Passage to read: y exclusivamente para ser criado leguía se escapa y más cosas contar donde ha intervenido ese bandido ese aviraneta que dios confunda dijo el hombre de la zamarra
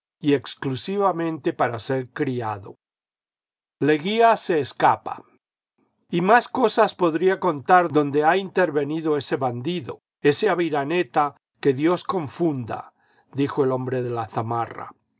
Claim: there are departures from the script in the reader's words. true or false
true